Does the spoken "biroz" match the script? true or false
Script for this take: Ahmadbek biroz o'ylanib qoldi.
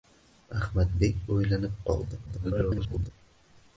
false